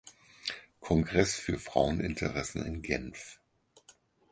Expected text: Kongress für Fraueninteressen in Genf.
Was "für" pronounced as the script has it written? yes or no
yes